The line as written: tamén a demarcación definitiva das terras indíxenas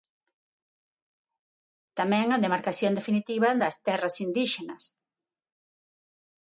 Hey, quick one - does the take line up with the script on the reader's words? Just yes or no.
yes